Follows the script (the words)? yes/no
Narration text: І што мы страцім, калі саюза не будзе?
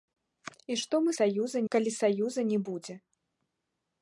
no